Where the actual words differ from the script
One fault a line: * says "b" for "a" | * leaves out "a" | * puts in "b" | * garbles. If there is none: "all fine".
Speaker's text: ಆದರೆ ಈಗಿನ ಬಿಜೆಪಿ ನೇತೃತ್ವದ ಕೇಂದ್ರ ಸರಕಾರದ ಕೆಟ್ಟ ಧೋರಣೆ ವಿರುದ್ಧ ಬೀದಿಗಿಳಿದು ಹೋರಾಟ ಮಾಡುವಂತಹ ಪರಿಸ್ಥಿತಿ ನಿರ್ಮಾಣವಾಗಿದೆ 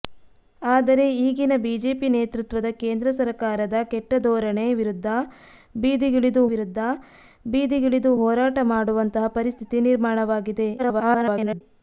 * puts in "ವಿರುದ್ಧ ಬೀದಿಗಿಳಿದು"
* garbles